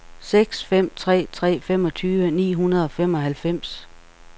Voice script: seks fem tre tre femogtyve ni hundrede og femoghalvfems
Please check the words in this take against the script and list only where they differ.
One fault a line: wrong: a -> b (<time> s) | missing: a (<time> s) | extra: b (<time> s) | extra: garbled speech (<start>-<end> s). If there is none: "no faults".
no faults